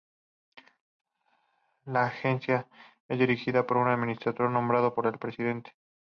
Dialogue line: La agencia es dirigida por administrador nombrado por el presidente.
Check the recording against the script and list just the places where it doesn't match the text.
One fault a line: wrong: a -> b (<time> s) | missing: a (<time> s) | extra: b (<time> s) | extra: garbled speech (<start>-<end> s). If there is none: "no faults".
extra: un (3.8 s)